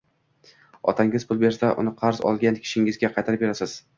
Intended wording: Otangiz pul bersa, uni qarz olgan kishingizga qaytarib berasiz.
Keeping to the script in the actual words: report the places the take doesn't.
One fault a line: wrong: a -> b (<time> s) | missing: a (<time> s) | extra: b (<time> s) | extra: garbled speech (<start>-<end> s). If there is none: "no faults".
no faults